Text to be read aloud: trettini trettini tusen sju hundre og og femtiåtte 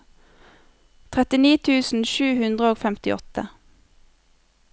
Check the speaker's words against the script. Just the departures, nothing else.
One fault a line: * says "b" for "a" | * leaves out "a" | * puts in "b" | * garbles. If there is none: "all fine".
* leaves out "trettini"
* leaves out "og"